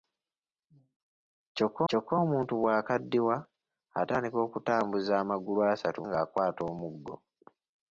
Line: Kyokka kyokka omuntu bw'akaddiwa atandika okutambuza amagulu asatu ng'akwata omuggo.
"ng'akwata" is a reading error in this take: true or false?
false